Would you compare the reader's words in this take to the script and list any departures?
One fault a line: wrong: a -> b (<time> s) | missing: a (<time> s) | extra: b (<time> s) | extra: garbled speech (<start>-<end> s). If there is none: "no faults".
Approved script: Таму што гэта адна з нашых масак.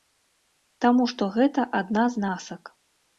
missing: нашых (2.3 s)